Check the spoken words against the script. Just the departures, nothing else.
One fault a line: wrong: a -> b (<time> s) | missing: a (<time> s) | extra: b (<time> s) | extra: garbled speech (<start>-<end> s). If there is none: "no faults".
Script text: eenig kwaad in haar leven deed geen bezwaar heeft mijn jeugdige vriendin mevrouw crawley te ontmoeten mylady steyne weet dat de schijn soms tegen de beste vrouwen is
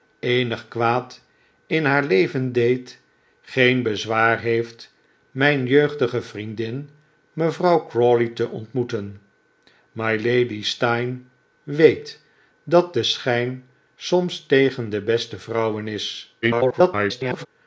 extra: garbled speech (16.4-17.5 s)